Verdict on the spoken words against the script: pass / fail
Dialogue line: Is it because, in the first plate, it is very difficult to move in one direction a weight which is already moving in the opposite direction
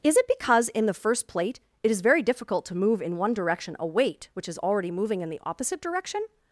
pass